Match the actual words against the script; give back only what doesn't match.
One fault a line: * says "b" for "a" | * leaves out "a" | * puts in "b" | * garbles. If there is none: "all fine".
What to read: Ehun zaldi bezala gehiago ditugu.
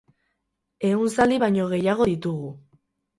* says "baino" for "bezala"